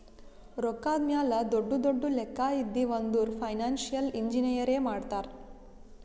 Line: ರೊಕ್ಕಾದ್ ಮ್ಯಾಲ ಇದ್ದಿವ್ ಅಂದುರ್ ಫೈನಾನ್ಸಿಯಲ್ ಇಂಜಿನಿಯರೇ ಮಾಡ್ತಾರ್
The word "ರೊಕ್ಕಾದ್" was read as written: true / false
true